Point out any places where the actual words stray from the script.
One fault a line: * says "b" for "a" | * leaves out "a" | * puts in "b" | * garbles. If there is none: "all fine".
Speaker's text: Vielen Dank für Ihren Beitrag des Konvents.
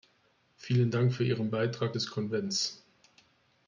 all fine